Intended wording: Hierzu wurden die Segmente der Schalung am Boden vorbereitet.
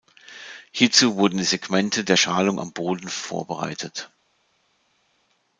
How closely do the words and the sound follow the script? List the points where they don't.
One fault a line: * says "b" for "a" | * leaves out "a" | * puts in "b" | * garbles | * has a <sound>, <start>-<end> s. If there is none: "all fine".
all fine